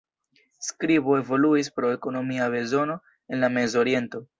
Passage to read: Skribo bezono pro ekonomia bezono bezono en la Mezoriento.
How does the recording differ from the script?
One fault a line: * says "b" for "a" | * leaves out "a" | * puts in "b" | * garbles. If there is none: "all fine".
* says "evoluis" for "bezono"
* leaves out "bezono"